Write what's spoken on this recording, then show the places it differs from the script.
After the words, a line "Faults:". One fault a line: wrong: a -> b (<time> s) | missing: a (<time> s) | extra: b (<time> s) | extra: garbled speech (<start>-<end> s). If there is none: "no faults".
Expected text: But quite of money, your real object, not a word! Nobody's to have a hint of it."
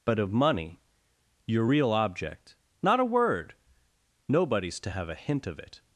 But of money, your real object, not a word! Nobody's to have a hint of it."
Faults:
missing: quite (0.2 s)